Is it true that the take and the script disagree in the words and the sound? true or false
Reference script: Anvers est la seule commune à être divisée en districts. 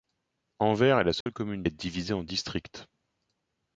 true